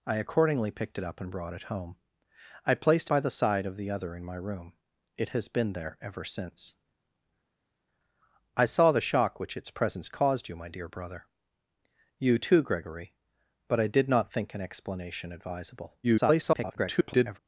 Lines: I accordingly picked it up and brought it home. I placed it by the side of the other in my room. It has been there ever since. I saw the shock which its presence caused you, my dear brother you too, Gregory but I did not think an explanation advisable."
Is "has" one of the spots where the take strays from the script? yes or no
no